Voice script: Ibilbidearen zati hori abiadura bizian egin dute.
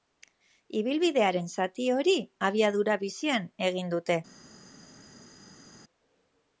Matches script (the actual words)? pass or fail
pass